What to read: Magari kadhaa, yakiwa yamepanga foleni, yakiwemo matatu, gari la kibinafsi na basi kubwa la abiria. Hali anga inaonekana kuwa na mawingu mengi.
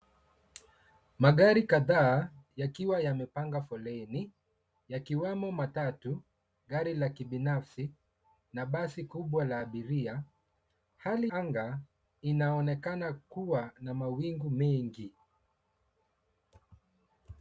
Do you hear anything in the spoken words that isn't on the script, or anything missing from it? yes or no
no